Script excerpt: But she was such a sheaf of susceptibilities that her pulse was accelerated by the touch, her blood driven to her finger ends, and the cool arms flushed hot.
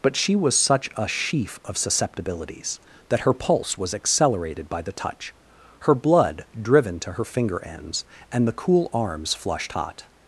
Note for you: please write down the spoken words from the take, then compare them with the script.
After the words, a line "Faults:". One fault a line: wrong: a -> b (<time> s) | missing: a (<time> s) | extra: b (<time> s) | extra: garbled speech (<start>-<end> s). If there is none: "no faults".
But she was such a sheaf of susceptibilities that her pulse was accelerated by the touch, her blood driven to her finger ends, and the cool arms flushed hot.
Faults:
no faults